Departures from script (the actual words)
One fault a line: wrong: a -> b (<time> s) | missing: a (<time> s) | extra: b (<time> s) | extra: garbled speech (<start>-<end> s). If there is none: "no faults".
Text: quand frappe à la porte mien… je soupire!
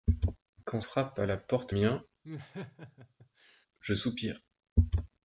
no faults